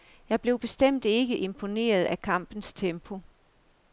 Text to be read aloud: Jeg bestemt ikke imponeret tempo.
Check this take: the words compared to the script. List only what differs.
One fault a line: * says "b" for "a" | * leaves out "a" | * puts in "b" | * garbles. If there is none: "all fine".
* puts in "blev"
* puts in "af kampens"